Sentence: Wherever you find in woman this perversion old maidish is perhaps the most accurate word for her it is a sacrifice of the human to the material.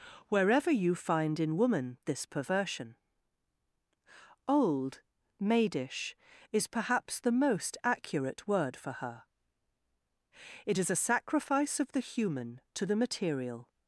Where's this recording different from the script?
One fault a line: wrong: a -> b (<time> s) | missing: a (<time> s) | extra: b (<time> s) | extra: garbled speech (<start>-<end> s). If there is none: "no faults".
no faults